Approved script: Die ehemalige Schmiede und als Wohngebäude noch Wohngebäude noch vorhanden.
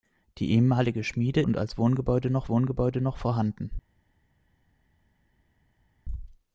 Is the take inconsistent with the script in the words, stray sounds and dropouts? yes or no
no